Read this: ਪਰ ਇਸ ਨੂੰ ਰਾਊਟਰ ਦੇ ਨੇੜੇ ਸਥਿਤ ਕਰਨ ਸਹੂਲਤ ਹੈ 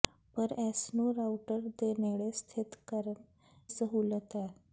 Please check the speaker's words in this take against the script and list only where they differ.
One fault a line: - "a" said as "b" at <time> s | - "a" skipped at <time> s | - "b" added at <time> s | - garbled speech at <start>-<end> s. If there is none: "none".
none